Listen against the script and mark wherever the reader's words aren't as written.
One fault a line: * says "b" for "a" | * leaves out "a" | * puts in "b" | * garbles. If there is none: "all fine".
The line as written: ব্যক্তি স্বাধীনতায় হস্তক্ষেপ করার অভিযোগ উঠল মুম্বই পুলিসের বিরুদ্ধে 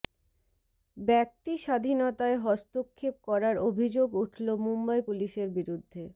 all fine